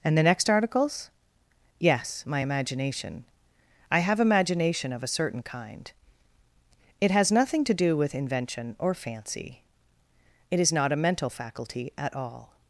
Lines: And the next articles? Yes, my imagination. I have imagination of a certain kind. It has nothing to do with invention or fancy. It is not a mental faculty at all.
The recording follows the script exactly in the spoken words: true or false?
true